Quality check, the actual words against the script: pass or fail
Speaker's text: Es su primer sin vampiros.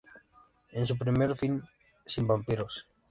fail